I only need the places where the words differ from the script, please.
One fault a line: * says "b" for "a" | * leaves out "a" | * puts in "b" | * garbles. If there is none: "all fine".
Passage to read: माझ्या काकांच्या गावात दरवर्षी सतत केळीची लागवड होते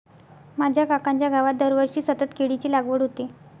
all fine